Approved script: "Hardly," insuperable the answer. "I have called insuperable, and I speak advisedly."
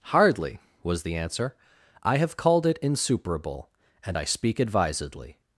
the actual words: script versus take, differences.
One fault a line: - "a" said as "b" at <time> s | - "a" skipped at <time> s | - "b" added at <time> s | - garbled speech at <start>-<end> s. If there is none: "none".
- "insuperable" said as "was" at 0.8 s
- "it" added at 2.6 s